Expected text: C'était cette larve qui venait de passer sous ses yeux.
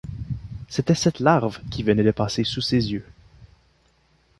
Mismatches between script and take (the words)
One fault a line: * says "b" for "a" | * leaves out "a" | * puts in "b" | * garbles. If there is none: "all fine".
all fine